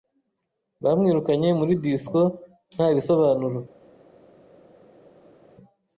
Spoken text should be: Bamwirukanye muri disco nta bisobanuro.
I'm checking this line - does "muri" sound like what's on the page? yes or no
yes